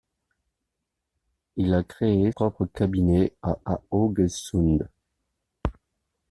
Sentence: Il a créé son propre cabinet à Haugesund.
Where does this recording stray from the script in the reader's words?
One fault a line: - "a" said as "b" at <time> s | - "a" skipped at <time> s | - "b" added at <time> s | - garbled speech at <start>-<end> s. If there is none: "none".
- "son" skipped at 2.3 s
- "à" added at 3.6 s